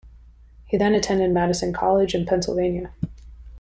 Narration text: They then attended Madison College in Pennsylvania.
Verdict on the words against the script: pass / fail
fail